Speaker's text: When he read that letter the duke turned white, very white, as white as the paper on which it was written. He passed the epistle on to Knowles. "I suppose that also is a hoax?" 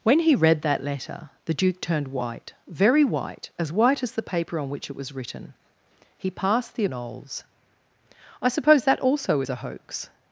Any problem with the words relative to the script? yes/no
yes